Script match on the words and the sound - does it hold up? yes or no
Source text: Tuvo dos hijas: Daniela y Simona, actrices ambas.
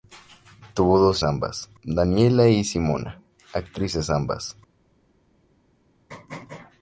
no